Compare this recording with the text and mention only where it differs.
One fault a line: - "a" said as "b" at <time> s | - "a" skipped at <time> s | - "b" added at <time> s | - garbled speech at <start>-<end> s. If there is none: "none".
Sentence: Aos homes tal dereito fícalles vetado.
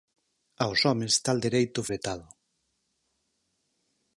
- "fícalles" skipped at 1.8 s